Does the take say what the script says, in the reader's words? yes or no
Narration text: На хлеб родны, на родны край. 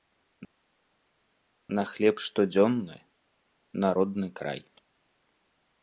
no